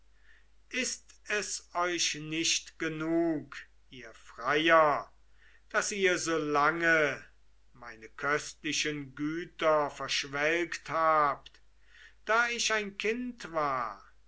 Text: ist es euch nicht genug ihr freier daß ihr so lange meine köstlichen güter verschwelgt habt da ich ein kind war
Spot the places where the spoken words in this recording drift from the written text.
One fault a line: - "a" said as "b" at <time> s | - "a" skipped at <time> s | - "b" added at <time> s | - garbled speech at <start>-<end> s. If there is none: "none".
none